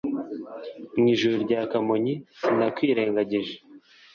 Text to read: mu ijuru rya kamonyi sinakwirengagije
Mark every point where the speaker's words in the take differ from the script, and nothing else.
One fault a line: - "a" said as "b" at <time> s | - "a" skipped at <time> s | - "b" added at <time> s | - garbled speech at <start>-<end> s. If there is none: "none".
none